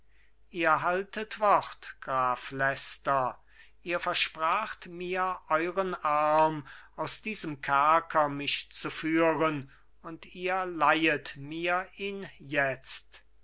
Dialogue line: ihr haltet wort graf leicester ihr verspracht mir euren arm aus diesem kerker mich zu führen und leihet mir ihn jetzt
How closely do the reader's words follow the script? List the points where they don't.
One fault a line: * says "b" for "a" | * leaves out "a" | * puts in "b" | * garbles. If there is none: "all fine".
* puts in "ihr"